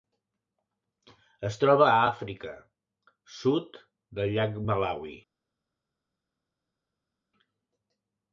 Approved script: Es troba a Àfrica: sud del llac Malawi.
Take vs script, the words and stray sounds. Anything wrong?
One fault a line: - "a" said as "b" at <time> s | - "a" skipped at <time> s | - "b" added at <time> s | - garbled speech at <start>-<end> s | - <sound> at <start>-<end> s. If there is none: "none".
none